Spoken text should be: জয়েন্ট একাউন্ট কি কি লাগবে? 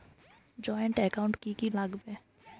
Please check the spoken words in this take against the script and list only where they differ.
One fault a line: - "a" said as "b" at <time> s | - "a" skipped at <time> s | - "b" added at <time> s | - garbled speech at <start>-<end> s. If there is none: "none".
none